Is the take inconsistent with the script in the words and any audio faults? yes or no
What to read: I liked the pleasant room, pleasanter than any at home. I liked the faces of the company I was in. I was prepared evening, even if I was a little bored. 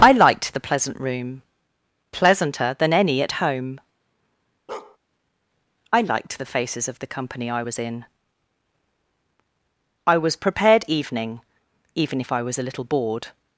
yes